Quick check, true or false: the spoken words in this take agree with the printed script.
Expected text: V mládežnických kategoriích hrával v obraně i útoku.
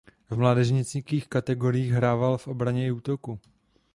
true